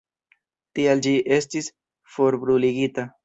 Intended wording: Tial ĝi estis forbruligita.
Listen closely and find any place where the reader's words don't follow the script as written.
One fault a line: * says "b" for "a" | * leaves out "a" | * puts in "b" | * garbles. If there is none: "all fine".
all fine